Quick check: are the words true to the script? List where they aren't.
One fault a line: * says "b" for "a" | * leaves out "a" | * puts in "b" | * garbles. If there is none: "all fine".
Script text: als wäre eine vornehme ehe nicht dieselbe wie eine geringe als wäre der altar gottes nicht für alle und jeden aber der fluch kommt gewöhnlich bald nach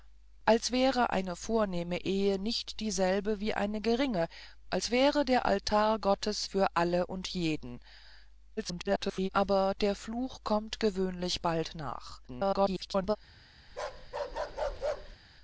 * leaves out "nicht"
* garbles
* garbles